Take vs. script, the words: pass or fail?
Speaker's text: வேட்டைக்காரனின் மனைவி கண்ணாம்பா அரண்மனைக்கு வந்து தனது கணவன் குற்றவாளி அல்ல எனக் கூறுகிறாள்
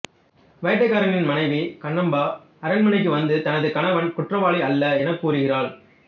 pass